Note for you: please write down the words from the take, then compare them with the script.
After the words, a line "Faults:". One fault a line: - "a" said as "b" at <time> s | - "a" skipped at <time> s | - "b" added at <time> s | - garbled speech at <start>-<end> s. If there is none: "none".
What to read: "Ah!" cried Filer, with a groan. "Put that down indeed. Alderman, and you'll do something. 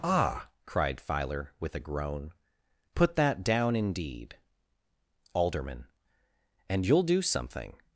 "Ah!" cried Filer, with a groan. "Put that down indeed. Alderman, and you'll do something.
Faults:
none